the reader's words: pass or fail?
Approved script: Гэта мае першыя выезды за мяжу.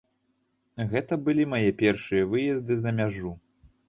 fail